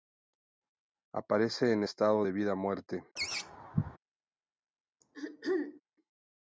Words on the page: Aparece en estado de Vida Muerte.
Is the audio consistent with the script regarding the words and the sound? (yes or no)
no